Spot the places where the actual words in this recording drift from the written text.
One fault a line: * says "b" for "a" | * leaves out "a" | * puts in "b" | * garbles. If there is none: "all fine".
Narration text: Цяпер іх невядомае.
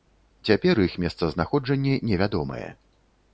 * puts in "месцазнаходжанне"